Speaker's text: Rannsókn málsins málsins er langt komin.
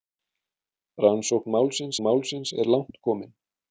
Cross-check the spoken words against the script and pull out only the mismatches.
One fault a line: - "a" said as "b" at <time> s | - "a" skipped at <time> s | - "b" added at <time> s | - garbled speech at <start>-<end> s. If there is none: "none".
none